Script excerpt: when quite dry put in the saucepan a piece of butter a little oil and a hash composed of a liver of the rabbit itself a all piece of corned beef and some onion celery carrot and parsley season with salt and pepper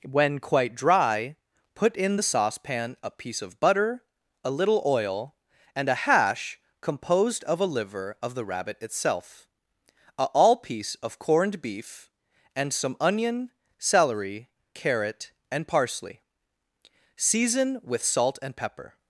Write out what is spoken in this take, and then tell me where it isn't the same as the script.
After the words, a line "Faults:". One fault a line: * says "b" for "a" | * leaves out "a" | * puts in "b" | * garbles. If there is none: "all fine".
when quite dry put in the saucepan a piece of butter a little oil and a hash composed of a liver of the rabbit itself a all piece of corned beef and some onion celery carrot and parsley season with salt and pepper
Faults:
all fine